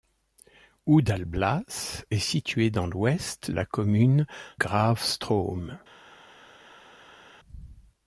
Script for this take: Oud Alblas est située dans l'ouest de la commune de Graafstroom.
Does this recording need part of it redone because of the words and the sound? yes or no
yes